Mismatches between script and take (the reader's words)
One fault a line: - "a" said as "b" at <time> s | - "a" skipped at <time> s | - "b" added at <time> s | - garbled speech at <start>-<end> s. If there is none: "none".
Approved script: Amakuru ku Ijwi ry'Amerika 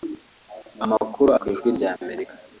none